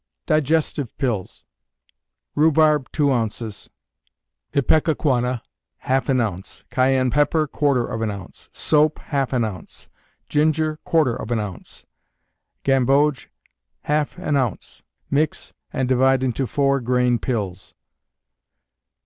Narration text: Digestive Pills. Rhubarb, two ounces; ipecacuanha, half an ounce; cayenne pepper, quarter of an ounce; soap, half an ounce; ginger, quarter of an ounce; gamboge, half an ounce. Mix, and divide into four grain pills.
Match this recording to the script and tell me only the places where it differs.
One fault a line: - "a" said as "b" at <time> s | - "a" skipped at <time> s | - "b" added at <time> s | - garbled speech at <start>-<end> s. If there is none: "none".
none